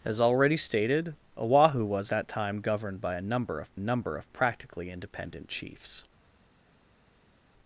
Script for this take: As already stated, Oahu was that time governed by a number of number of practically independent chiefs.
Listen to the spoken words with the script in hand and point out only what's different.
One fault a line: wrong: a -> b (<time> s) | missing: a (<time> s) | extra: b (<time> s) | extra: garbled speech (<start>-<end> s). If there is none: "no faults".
no faults